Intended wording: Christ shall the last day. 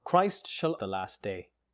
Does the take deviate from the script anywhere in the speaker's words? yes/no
no